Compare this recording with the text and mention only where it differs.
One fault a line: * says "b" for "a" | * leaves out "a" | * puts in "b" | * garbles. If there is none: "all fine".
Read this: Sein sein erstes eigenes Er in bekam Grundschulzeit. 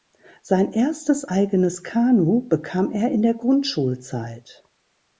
* leaves out "sein"
* puts in "Kanu bekam"
* says "der" for "bekam"